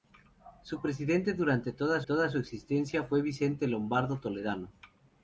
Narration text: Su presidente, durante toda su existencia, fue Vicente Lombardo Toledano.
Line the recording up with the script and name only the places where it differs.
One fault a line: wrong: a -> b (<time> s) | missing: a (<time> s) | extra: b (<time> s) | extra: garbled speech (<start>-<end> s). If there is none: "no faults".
extra: toda (2.0 s)